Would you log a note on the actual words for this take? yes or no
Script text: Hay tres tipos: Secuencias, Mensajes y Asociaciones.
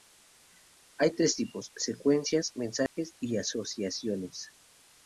no